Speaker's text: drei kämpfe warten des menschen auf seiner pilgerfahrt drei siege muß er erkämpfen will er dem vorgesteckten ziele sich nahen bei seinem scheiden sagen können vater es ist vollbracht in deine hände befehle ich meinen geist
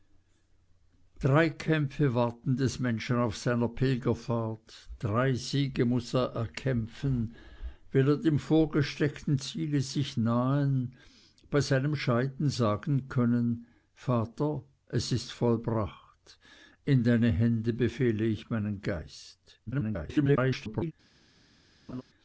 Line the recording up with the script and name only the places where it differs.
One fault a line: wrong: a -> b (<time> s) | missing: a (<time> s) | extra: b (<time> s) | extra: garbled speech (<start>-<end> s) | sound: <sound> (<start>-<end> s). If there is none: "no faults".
extra: garbled speech (19.7-20.9 s)
sound: laugh (21.9-22.0 s)